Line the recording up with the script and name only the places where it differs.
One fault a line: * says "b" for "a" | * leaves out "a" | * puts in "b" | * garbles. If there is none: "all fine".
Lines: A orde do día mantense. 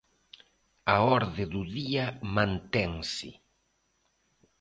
all fine